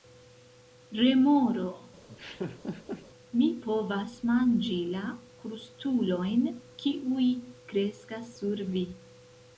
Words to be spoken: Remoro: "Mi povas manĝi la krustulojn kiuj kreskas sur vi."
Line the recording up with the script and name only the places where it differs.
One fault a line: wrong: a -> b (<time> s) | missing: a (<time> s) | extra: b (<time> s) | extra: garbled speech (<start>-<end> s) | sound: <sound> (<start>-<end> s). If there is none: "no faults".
sound: laugh (2.1-3.1 s)